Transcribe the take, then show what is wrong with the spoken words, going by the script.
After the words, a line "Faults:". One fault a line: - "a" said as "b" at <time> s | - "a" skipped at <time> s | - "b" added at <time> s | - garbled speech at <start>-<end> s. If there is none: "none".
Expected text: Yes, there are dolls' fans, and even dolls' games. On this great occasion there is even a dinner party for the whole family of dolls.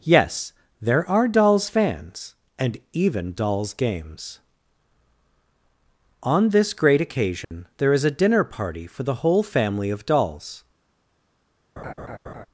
Yes, there are dolls' fans, and even dolls' games. On this great occasion there is a dinner party for the whole family of dolls.
Faults:
- "even" skipped at 8.0 s